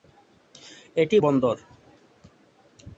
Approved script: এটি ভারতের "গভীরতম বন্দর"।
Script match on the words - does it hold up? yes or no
no